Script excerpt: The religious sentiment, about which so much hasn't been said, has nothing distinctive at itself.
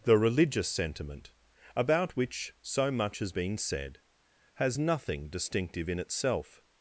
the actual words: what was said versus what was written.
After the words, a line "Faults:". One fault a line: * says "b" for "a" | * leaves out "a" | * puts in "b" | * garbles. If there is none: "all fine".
The religious sentiment, about which so much has been said, has nothing distinctive in itself.
Faults:
* says "has" for "hasn't"
* says "in" for "at"